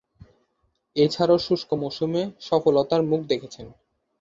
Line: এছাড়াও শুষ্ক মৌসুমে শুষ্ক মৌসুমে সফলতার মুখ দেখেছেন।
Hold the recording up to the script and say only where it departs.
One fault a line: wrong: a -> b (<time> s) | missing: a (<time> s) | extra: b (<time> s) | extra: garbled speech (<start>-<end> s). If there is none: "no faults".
missing: শুষ্ক মৌসুমে (2.2 s)